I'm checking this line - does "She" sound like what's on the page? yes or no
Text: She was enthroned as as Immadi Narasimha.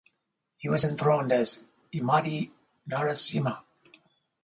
no